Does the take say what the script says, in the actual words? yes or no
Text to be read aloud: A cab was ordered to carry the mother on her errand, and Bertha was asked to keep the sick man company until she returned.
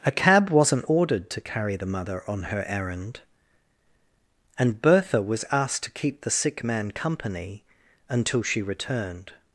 no